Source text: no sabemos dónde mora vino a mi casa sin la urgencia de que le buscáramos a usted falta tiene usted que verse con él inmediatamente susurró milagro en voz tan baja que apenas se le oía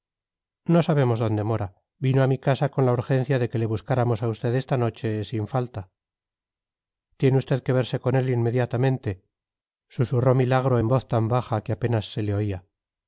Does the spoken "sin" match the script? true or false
false